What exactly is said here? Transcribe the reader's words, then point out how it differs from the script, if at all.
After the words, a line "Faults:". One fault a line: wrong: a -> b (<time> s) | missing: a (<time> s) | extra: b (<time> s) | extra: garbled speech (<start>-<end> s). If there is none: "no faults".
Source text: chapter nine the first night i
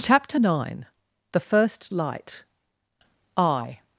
chapter nine the first light i
Faults:
wrong: night -> light (1.9 s)